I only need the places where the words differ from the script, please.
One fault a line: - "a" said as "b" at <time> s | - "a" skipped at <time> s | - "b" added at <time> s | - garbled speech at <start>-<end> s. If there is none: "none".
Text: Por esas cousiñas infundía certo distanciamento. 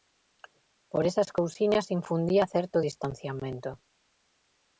none